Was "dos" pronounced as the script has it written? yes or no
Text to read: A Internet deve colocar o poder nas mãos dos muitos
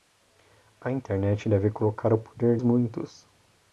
no